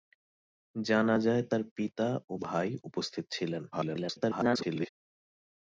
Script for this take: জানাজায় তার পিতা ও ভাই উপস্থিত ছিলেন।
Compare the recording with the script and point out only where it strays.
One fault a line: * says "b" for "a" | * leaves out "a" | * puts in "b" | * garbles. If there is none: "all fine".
* garbles